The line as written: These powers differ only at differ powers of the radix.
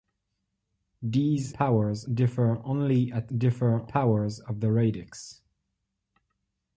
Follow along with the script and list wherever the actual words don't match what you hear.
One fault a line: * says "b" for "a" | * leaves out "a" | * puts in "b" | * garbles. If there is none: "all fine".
all fine